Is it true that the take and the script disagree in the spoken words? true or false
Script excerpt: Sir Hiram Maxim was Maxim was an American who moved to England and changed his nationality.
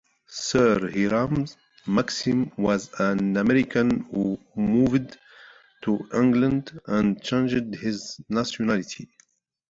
true